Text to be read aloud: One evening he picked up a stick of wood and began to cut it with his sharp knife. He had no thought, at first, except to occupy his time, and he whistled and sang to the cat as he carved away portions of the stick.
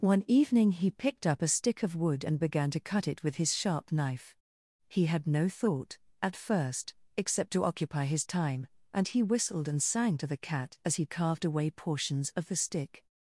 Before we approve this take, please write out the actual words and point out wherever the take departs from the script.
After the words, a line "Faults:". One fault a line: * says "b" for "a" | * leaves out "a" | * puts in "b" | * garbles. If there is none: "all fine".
One evening he picked up a stick of wood and began to cut it with his sharp knife. He had no thought, at first, except to occupy his time, and he whistled and sang to the cat as he carved away portions of the stick.
Faults:
all fine